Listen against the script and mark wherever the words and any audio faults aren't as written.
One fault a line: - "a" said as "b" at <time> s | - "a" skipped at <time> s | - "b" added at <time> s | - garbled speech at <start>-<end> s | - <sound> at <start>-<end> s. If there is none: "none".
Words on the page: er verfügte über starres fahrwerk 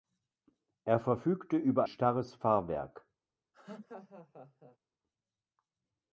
- laugh at 3.5-4.8 s